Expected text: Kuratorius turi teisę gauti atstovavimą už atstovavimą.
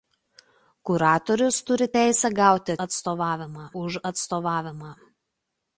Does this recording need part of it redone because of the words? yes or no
no